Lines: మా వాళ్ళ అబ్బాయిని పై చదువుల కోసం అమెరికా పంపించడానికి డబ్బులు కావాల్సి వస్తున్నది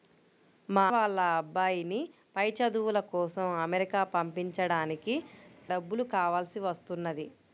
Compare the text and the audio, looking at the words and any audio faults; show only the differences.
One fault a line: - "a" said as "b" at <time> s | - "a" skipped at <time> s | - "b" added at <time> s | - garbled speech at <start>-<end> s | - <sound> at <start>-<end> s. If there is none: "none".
none